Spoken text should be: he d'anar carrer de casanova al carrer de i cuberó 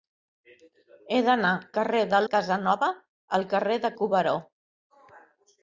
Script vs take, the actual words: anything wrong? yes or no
no